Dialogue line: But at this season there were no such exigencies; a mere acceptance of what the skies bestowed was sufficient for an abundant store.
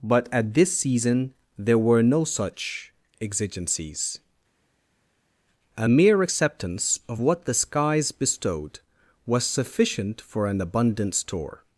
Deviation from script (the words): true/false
false